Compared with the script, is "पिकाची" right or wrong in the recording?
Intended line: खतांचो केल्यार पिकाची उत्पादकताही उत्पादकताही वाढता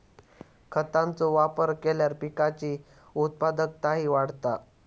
right